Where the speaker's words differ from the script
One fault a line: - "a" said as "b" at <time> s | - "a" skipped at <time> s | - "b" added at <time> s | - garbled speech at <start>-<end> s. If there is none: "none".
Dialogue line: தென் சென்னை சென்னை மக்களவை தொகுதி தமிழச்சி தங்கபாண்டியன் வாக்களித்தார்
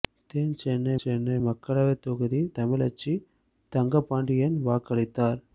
none